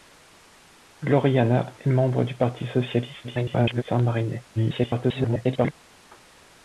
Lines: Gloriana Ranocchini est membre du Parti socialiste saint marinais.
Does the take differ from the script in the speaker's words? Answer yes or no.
yes